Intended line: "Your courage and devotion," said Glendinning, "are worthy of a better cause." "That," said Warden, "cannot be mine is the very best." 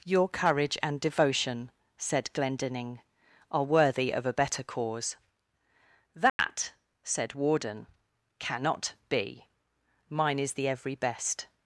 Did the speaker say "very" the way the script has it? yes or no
no